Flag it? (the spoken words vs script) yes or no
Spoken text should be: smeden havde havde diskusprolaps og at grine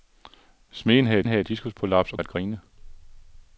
no